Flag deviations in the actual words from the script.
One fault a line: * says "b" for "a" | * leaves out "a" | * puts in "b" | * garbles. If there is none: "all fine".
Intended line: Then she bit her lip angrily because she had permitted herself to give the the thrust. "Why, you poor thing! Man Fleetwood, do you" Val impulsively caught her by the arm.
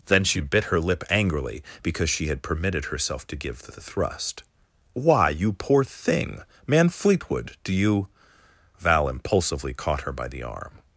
all fine